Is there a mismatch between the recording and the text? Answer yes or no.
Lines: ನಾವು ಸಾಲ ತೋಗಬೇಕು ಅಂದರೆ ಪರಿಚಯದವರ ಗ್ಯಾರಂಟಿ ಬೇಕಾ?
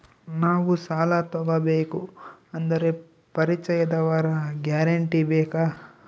no